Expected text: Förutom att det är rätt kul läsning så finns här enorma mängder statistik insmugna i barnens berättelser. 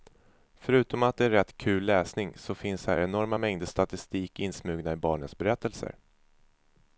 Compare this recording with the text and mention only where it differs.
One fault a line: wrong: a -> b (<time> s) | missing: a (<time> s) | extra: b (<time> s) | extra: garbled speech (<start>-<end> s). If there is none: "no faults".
no faults